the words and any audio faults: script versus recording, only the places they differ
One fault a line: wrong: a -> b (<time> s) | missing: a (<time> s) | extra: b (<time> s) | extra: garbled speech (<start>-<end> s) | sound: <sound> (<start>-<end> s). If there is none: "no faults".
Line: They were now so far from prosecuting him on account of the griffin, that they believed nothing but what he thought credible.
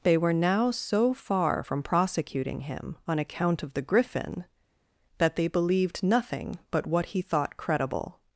no faults